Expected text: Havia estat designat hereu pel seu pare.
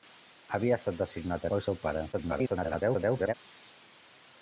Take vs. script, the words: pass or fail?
fail